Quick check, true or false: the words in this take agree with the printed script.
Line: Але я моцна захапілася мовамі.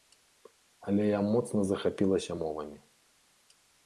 true